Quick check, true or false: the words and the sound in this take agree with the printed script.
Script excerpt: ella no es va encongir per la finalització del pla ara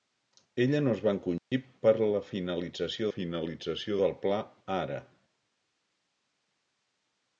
false